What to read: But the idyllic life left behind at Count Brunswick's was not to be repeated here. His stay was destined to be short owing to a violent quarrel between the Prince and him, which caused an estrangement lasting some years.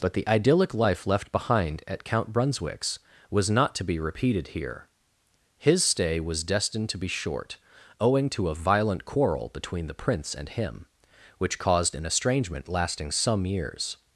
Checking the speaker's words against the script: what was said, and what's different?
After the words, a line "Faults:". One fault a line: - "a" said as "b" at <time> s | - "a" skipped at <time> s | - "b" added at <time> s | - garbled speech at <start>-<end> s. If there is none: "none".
But the idyllic life left behind at Count Brunswick's was not to be repeated here. His stay was destined to be short owing to a violent quarrel between the Prince and him, which caused an estrangement lasting some years.
Faults:
none